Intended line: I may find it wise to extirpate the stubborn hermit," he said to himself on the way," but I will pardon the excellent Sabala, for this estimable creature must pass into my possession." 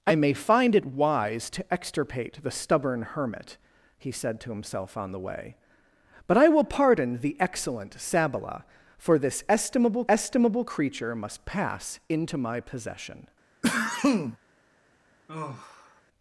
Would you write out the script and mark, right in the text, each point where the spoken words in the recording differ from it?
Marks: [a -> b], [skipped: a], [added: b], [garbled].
I may find it wise to extirpate the stubborn hermit," he said to himself on the way," but I will pardon the excellent Sabala, for this estimable [added: estimable] creature must pass into my possession."